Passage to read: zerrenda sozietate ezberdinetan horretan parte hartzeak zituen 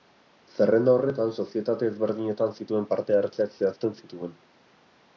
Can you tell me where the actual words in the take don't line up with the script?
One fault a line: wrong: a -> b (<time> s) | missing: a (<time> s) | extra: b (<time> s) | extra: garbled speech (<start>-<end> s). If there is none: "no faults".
extra: horretan (1.0 s)
wrong: horretan -> zituen (2.6 s)
extra: zehazten (3.6 s)